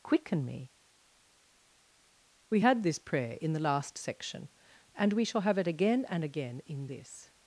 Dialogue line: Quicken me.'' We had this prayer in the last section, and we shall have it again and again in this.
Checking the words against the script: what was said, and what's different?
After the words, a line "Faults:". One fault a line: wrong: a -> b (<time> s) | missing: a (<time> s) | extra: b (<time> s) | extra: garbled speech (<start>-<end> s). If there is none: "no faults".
Quicken me.'' We had this prayer in the last section, and we shall have it again and again in this.
Faults:
no faults